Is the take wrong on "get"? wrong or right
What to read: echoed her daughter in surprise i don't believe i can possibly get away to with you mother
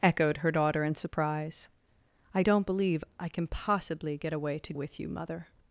right